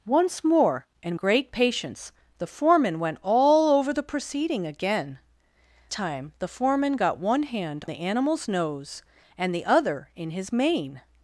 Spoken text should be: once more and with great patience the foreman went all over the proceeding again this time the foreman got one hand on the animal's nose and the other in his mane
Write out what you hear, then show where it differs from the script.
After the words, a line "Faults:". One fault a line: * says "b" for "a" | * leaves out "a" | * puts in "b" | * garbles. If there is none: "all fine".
once more and great patience the foreman went all over the proceeding again time the foreman got one hand the animal's nose and the other in his mane
Faults:
* leaves out "with"
* leaves out "this"
* leaves out "on"